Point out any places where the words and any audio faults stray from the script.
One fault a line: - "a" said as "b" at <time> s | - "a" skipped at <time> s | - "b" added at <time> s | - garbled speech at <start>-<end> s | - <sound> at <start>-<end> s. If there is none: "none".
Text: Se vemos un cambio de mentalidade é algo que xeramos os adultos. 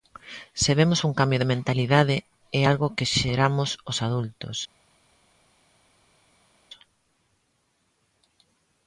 none